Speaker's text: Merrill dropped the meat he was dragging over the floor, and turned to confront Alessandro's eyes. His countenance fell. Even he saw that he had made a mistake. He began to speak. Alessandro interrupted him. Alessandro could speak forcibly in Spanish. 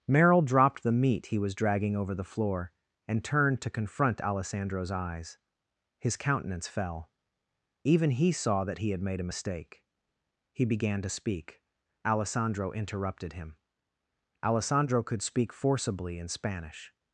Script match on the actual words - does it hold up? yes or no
yes